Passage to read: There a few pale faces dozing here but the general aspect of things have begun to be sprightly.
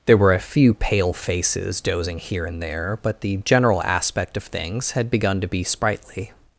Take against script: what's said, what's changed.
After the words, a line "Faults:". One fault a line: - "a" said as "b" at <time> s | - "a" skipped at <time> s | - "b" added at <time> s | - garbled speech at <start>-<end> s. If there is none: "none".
There were a few pale faces dozing here and there, but the general aspect of things had begun to be sprightly.
Faults:
- "were" added at 0.2 s
- "and there" added at 2.4 s
- "have" said as "had" at 4.9 s